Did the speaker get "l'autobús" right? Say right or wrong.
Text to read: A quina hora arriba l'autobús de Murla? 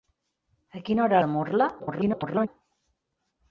wrong